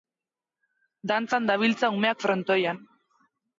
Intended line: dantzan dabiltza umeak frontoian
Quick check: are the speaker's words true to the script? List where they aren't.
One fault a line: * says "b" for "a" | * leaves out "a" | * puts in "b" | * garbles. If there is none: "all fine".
all fine